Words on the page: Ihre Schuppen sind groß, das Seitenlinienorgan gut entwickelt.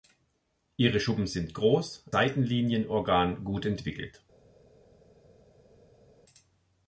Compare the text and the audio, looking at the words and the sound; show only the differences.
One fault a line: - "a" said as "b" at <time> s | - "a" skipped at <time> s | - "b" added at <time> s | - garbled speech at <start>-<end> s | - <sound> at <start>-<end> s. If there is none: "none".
- "das" skipped at 2.0 s